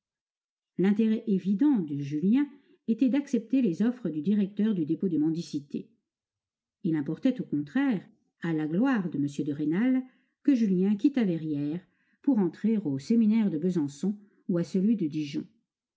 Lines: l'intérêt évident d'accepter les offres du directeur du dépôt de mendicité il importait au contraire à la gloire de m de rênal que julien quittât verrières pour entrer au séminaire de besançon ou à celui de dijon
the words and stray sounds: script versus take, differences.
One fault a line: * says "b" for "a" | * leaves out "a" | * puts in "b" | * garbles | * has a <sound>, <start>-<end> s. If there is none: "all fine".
* puts in "de julien était"